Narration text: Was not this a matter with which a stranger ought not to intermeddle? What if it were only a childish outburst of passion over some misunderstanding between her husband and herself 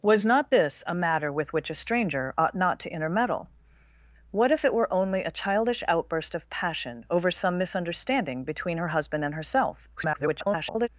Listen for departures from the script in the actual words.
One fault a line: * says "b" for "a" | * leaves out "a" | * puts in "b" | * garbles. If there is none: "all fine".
* garbles